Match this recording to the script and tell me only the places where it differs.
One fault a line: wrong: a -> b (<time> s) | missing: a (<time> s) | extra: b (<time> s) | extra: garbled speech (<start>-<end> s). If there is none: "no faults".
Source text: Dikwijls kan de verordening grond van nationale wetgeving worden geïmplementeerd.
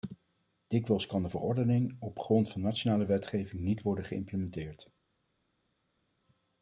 extra: op (2.0 s)
extra: niet (3.6 s)